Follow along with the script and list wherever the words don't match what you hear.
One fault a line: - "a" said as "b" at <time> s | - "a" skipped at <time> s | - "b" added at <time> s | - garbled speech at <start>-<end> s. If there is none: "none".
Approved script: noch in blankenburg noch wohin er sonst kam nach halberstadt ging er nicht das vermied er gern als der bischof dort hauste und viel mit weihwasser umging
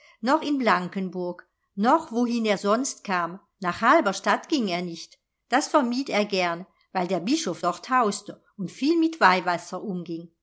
- "als" said as "weil" at 6.9 s